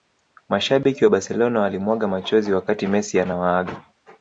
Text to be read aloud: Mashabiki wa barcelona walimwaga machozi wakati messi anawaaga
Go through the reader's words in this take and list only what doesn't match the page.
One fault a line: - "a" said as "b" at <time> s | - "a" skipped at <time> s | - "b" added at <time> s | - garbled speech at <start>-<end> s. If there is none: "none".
none